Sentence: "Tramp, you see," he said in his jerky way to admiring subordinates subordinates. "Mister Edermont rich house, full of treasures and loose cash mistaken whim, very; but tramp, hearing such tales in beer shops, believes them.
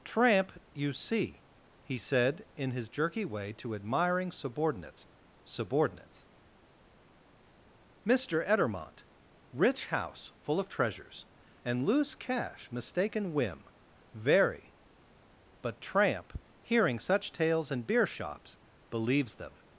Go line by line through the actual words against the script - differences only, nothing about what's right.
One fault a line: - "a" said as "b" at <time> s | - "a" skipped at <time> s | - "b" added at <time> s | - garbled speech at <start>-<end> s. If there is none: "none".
none